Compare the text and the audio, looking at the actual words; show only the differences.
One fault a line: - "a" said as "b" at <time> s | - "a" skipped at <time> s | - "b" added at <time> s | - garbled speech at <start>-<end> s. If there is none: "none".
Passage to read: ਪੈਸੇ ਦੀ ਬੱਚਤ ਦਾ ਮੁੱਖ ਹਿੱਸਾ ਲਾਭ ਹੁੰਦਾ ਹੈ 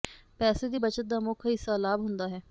none